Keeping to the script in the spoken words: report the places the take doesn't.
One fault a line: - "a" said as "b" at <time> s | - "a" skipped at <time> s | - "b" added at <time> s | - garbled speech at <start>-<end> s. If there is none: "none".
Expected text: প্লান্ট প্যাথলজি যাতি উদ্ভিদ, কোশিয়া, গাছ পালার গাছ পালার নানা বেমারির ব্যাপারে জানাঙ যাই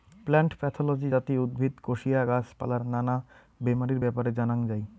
- "গাছ পালার" skipped at 2.8 s